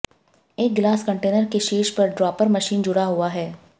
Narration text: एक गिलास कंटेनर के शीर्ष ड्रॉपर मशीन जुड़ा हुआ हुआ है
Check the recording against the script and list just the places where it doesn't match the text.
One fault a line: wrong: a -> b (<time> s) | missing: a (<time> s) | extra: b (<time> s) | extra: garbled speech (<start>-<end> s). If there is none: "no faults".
extra: पर (1.9 s)
missing: हुआ (3.3 s)